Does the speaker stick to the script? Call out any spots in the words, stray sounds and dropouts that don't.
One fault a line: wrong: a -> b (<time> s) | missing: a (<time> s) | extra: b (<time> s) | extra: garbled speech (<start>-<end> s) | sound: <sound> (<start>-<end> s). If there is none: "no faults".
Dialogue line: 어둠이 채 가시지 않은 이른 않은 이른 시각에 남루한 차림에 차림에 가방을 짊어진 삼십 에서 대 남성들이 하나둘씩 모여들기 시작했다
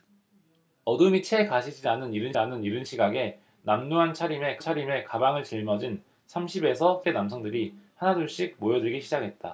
no faults